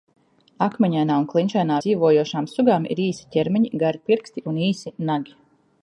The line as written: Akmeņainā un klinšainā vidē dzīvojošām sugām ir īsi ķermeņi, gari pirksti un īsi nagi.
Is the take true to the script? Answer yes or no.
no